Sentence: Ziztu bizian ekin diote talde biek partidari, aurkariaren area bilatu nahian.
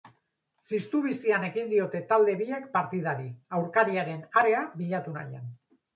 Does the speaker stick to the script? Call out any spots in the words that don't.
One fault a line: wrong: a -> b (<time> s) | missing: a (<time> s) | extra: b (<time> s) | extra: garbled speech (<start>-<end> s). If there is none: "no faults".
no faults